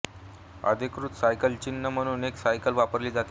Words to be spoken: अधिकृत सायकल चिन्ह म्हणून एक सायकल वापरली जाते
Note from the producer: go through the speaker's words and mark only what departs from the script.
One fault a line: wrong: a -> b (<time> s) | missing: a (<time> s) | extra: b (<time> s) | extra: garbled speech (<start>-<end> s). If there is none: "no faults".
no faults